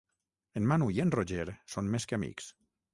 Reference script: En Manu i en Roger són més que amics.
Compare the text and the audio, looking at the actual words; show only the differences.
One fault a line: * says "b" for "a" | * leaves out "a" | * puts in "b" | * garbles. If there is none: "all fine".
all fine